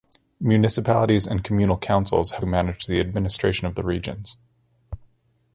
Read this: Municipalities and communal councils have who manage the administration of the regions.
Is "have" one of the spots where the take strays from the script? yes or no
no